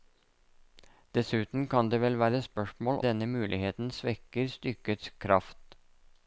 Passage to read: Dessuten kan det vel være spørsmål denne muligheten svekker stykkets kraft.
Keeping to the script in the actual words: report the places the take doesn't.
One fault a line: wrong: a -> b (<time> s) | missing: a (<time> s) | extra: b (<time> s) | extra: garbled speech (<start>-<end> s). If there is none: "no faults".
no faults